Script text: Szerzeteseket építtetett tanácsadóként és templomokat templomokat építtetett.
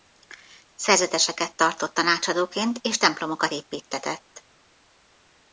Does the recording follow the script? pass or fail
fail